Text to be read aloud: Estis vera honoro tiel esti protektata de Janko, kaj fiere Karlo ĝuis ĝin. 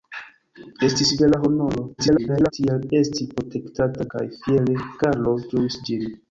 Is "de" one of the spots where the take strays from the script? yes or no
yes